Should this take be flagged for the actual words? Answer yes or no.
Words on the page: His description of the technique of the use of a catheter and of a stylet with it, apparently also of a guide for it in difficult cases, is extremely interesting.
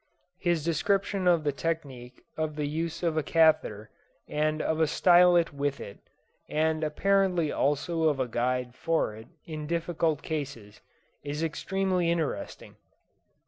yes